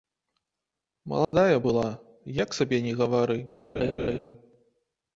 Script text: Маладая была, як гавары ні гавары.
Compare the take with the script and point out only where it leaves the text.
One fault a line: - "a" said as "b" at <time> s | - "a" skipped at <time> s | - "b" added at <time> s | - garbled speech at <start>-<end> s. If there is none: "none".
- "гавары" said as "сабе" at 2.6 s